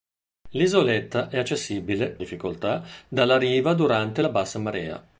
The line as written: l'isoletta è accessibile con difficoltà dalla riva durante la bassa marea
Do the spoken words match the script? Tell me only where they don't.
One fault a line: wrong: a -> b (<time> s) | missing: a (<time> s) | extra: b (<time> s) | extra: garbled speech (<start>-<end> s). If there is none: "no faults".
missing: con (2.2 s)